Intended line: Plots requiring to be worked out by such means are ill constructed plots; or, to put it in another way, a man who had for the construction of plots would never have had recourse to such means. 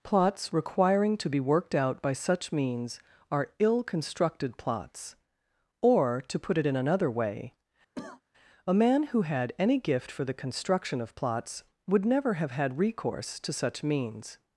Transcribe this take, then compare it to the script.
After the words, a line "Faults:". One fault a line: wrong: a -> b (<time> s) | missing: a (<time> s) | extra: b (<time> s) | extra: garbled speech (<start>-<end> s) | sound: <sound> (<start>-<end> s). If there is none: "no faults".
Plots requiring to be worked out by such means are ill constructed plots; or, to put it in another way, a man who had any gift for the construction of plots would never have had recourse to such means.
Faults:
sound: cough (7.9-8.2 s)
extra: any gift (9.6 s)